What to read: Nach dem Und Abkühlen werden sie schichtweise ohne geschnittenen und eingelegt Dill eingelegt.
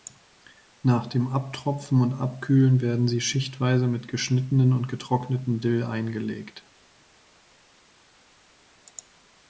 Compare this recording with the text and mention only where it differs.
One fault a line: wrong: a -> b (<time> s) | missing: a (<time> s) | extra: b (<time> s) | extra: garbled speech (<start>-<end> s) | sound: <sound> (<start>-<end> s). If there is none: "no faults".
extra: Abtropfen (1.3 s)
wrong: ohne -> mit (3.9 s)
wrong: eingelegt -> getrockneten (4.9 s)